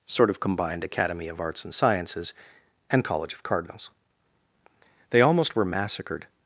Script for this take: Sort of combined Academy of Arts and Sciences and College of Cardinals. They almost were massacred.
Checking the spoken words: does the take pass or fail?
pass